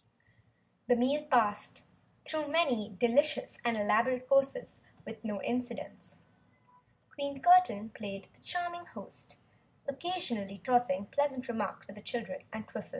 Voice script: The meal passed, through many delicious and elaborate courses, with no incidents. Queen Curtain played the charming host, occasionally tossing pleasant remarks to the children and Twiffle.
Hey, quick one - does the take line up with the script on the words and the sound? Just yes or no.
yes